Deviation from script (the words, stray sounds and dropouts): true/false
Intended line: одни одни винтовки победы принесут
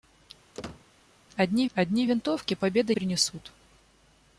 true